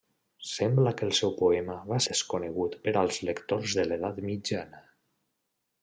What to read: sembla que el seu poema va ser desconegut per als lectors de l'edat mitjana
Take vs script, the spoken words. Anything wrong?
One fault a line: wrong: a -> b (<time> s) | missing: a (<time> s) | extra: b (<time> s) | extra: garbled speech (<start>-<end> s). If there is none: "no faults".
missing: ser (2.0 s)